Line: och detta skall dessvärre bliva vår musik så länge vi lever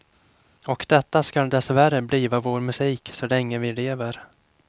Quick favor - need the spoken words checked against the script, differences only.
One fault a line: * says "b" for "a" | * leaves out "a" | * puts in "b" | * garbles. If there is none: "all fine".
all fine